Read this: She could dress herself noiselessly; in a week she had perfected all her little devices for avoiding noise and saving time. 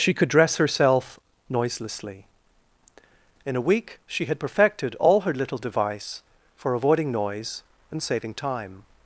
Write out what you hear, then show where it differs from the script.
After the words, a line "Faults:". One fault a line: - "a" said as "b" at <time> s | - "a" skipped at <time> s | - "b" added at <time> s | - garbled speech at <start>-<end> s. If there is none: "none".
She could dress herself noiselessly; in a week she had perfected all her little device for avoiding noise and saving time.
Faults:
- "devices" said as "device" at 5.6 s